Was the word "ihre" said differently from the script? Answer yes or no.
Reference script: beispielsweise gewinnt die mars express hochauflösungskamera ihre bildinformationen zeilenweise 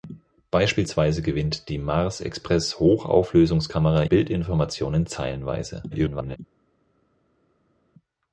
yes